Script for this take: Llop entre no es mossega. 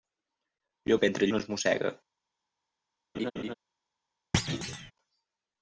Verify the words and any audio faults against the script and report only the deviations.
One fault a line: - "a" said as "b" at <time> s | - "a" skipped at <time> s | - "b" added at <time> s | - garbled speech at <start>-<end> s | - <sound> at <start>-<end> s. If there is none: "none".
- laugh at 3.1-3.5 s
- thud at 4.3-4.9 s